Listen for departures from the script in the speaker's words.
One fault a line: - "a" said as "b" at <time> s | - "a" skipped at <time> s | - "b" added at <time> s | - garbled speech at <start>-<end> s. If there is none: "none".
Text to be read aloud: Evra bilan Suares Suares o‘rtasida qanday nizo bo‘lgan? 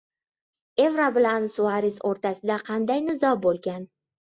- "Suares" skipped at 2.0 s